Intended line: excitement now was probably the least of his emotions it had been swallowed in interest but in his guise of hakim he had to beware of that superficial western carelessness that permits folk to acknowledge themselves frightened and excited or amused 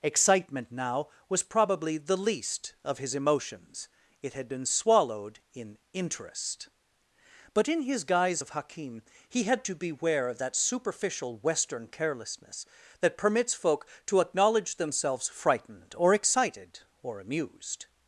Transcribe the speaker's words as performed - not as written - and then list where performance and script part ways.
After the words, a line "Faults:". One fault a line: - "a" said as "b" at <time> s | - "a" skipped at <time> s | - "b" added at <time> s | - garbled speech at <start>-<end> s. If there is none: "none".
excitement now was probably the least of his emotions it had been swallowed in interest but in his guise of hakim he had to beware of that superficial western carelessness that permits folk to acknowledge themselves frightened or excited or amused
Faults:
- "and" said as "or" at 16.0 s